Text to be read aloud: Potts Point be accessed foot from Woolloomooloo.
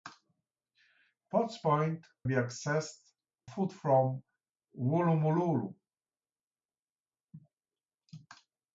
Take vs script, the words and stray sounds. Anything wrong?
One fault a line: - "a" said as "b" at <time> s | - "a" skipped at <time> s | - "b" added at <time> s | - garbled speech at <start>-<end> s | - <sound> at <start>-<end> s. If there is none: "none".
none